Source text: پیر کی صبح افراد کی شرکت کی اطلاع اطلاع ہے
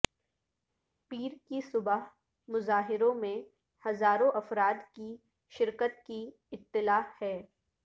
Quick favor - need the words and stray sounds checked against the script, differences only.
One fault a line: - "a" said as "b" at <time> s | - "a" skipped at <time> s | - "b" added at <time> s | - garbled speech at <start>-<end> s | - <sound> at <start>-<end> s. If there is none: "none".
- "مظاہروں میں ہزاروں" added at 2.5 s
- "اطلاع" skipped at 7.0 s